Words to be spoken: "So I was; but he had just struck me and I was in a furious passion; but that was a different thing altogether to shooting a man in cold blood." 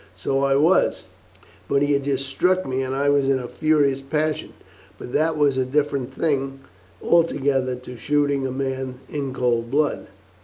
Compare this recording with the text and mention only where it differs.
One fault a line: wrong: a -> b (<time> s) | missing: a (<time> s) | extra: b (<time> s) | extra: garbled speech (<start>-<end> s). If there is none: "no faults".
no faults